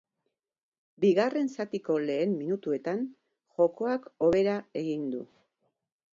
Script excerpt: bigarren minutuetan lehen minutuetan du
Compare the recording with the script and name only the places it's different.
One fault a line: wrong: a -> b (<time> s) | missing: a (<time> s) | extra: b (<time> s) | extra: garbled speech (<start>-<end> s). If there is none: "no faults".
wrong: minutuetan -> zatiko (1.6 s)
extra: jokoak hobera egin (3.6 s)